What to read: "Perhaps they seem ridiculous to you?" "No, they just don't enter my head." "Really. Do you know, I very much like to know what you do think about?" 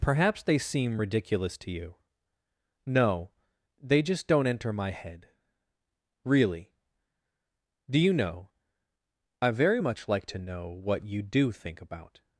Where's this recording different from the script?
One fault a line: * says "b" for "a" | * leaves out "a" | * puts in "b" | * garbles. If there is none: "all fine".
all fine